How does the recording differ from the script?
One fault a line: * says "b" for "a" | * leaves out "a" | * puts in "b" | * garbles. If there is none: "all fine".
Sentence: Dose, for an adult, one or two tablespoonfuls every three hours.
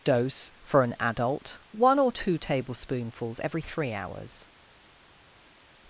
all fine